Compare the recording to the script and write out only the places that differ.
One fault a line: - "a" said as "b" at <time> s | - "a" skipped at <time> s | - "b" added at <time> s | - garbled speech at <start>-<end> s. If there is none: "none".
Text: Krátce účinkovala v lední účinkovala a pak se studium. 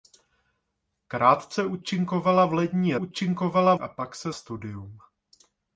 none